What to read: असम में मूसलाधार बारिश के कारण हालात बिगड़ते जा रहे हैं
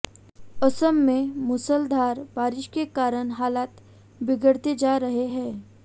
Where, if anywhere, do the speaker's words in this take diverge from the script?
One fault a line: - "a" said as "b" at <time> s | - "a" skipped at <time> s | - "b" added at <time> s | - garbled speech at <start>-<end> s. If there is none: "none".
none